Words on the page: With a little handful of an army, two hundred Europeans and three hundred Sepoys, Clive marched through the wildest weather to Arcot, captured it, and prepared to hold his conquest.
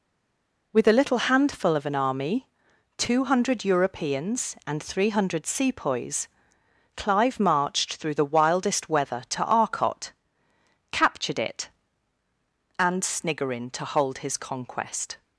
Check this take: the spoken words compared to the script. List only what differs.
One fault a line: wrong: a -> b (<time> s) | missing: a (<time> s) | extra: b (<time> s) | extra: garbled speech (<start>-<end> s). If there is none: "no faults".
wrong: prepared -> sniggerin (13.0 s)